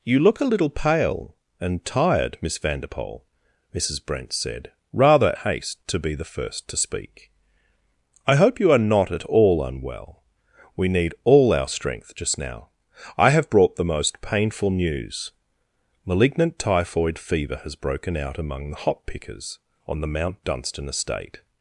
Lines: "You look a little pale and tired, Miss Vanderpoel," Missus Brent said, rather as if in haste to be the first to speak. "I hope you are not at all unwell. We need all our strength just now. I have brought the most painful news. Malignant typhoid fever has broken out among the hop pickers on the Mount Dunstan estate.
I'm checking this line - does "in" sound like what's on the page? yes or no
no